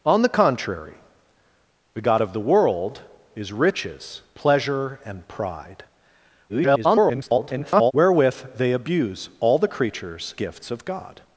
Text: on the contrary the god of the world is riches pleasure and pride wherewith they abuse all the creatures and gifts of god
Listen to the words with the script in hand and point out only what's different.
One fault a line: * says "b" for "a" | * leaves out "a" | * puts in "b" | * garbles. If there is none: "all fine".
* garbles
* leaves out "and"